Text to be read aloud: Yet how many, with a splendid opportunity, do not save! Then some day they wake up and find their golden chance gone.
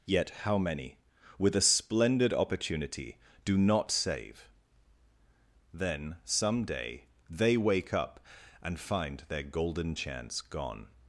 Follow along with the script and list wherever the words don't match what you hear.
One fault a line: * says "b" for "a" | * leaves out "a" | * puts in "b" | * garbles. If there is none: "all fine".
all fine